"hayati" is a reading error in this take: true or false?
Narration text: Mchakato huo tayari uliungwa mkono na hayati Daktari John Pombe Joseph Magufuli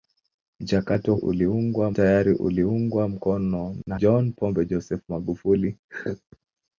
true